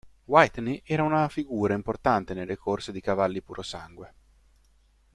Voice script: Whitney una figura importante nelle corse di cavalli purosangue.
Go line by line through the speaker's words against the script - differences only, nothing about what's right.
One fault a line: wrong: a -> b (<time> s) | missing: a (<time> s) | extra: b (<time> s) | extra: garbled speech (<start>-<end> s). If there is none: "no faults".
extra: era (0.8 s)